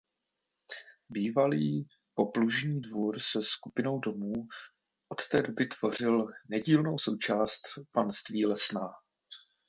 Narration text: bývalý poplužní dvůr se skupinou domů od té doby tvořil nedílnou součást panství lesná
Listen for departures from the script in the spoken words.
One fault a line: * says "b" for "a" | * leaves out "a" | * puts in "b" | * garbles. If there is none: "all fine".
all fine